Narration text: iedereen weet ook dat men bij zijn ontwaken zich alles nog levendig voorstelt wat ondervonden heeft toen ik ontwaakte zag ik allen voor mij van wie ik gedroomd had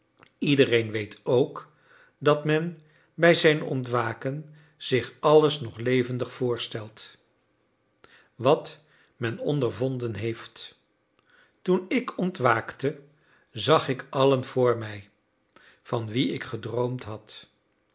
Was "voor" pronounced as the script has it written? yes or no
yes